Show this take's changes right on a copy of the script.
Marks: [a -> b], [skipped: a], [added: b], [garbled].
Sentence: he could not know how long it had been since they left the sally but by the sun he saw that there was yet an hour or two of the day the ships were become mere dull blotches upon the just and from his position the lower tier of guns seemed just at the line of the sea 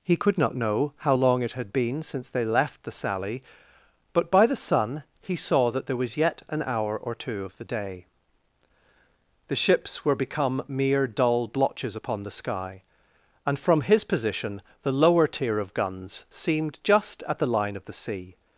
he could not know how long it had been since they left the sally but by the sun he saw that there was yet an hour or two of the day the ships were become mere dull blotches upon the [just -> sky] and from his position the lower tier of guns seemed just at the line of the sea